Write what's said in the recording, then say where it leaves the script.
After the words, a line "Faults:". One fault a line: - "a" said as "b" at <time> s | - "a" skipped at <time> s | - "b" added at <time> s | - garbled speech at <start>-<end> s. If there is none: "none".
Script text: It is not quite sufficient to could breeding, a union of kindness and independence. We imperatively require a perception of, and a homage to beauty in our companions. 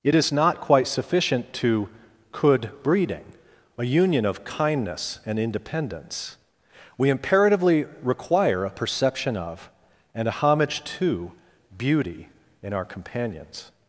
It is not quite sufficient to could breeding, a union of kindness and independence. We imperatively require a perception of, and a homage to beauty in our companions.
Faults:
none